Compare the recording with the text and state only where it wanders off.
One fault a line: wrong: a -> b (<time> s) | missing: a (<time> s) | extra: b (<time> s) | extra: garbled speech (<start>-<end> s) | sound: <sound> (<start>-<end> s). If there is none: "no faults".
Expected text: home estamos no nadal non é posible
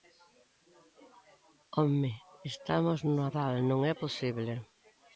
no faults